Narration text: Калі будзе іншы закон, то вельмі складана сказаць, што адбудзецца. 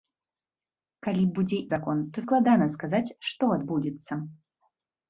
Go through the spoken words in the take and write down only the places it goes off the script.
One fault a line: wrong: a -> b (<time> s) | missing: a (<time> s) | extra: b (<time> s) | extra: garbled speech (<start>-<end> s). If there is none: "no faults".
missing: іншы (1.6 s)
missing: вельмі (2.3 s)